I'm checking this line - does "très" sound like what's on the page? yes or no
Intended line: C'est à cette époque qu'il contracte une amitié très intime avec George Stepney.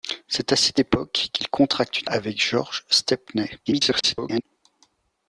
no